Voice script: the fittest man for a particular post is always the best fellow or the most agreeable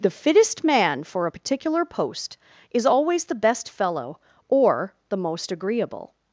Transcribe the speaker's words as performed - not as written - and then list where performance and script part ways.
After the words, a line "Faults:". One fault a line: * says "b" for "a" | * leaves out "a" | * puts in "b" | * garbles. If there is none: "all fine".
the fittest man for a particular post is always the best fellow or the most agreeable
Faults:
all fine